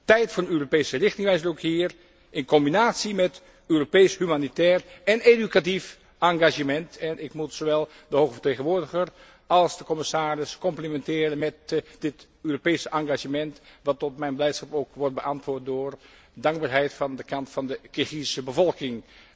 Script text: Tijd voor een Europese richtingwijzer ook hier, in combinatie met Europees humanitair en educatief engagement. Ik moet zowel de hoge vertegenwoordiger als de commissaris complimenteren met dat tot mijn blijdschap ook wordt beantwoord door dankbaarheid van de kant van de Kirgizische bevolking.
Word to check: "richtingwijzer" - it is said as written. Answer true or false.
true